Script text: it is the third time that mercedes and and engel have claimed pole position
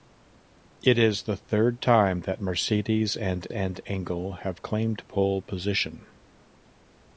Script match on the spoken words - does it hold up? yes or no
yes